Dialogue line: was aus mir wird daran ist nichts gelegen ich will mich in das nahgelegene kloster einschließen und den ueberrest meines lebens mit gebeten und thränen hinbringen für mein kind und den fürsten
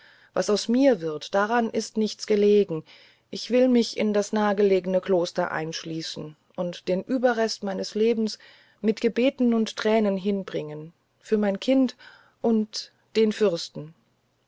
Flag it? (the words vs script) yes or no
no